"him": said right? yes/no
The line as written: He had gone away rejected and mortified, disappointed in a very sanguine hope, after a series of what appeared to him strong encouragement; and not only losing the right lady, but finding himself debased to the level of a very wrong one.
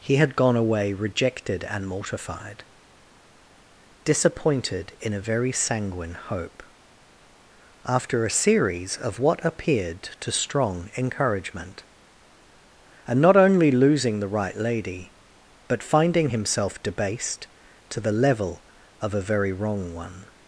no